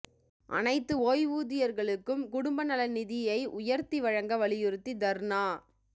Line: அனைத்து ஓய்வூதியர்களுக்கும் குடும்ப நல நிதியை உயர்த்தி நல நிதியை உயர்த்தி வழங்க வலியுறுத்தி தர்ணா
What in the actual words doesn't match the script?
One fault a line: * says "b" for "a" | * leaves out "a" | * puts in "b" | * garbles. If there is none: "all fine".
* leaves out "நல நிதியை உயர்த்தி"